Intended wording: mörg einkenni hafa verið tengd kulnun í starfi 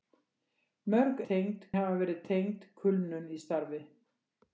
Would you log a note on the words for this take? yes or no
yes